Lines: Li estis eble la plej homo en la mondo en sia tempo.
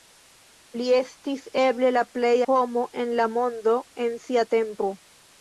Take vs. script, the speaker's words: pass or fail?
pass